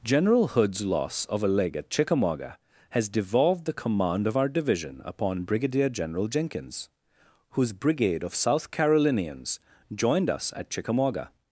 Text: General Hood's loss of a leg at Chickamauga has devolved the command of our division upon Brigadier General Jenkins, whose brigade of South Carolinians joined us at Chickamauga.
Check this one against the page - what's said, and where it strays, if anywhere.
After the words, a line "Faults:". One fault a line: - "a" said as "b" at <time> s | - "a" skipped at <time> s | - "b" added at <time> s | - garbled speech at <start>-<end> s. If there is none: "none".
General Hood's loss of a leg at Chickamauga has devolved the command of our division upon Brigadier General Jenkins, whose brigade of South Carolinians joined us at Chickamauga.
Faults:
none